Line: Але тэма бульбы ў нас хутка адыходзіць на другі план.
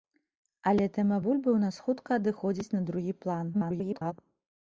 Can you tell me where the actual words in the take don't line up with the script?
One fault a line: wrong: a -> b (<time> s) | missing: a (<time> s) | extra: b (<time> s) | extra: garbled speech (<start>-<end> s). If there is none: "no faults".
extra: garbled speech (3.5-4.1 s)